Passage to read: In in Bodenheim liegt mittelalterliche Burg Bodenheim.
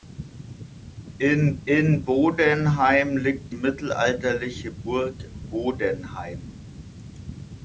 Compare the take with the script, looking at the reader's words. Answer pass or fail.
pass